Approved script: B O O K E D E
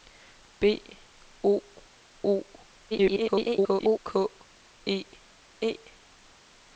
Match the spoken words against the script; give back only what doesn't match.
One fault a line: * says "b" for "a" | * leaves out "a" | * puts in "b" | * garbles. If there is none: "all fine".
* garbles
* leaves out "D"